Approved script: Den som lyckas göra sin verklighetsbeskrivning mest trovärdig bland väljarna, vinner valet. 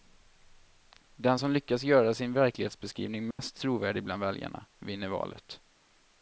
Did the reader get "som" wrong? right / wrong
right